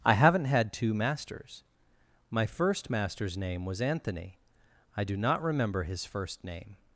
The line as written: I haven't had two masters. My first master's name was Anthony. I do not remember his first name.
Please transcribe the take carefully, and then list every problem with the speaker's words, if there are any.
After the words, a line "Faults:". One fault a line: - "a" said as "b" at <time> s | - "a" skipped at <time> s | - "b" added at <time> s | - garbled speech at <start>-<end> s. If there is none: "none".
I haven't had two masters. My first master's name was Anthony. I do not remember his first name.
Faults:
none